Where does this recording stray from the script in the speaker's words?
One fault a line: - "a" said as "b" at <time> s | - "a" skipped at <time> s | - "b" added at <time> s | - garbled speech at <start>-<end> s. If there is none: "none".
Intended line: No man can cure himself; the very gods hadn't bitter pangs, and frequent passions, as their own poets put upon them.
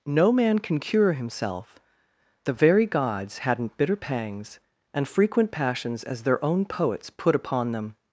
none